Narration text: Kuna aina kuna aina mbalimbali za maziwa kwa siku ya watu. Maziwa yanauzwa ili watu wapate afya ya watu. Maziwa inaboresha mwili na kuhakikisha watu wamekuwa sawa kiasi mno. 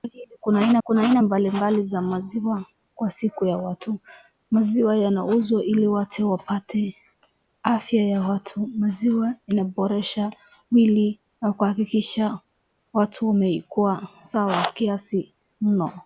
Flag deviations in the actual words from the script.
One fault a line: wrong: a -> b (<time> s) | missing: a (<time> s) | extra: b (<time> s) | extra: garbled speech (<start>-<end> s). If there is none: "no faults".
no faults